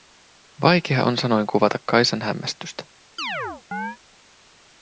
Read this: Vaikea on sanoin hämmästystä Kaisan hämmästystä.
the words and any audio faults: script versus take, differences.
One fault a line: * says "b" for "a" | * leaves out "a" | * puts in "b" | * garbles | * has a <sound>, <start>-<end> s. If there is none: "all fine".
* says "kuvata" for "hämmästystä"
* has a chirp, 3.2-4.0 s